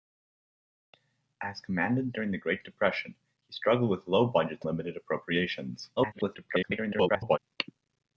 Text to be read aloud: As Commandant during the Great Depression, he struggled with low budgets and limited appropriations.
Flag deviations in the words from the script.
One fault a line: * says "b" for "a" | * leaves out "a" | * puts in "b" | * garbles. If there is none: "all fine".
* leaves out "and"
* garbles